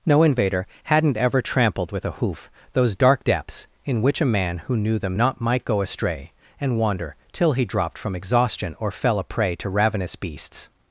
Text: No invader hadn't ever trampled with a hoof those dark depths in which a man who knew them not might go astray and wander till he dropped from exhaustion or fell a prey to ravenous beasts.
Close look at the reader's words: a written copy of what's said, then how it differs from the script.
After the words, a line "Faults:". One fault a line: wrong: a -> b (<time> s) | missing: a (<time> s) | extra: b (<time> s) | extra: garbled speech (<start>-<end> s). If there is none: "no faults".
No invader hadn't ever trampled with a hoof those dark depths in which a man who knew them not might go astray and wander till he dropped from exhaustion or fell a prey to ravenous beasts.
Faults:
no faults